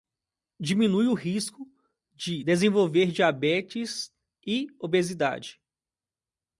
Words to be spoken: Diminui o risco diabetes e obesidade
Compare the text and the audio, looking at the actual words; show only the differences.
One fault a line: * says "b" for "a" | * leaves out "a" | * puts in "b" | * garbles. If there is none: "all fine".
* puts in "de desenvolver"